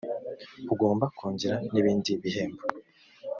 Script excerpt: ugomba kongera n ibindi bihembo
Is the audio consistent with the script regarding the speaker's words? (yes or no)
yes